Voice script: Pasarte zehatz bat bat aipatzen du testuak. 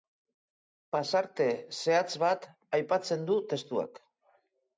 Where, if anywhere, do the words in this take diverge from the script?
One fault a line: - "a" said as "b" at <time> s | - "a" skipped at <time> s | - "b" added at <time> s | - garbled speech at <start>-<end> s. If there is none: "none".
- "bat" skipped at 2.5 s